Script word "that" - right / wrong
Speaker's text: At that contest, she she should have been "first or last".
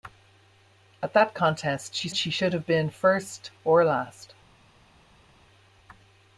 right